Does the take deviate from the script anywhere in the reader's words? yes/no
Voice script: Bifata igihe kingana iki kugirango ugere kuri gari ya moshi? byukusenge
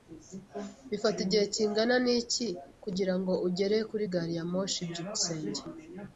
no